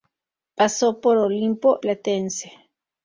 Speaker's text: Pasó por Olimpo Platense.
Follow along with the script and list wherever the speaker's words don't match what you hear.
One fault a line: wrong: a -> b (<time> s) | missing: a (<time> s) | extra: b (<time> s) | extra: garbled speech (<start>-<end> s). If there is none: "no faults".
no faults